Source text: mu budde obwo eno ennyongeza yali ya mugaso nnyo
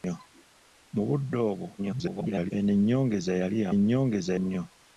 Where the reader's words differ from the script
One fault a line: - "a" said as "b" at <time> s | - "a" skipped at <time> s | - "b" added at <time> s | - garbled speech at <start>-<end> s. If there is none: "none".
- garbled speech at 1.8-2.5 s
- "mugaso" said as "ennyongeza" at 3.8 s